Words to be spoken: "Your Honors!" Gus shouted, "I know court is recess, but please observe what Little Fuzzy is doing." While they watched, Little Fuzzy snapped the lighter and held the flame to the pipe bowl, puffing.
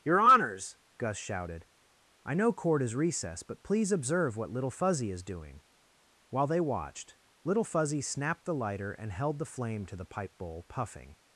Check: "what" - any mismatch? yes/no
no